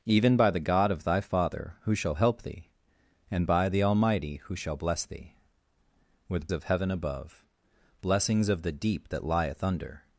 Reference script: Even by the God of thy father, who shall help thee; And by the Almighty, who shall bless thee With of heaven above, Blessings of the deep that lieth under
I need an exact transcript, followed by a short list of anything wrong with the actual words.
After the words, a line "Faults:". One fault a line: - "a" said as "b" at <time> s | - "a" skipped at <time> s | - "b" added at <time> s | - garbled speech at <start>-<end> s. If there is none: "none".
Even by the God of thy father, who shall help thee; And by the Almighty, who shall bless thee With of heaven above, Blessings of the deep that lieth under
Faults:
none